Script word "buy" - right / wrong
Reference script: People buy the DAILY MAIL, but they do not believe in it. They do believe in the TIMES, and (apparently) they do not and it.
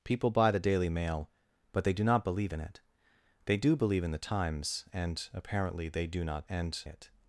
right